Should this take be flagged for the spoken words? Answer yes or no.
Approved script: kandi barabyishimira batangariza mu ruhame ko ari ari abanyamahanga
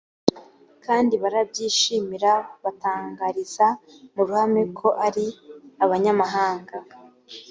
yes